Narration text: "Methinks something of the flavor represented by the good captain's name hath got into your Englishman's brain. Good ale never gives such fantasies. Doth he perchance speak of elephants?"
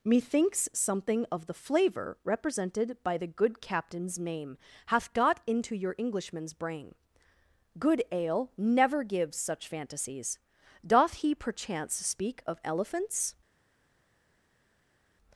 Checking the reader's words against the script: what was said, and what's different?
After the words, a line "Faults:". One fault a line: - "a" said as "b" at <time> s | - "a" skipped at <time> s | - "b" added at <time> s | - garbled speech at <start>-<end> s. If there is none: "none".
"Methinks something of the flavor represented by the good captain's name hath got into your Englishman's brain. Good ale never gives such fantasies. Doth he perchance speak of elephants?"
Faults:
none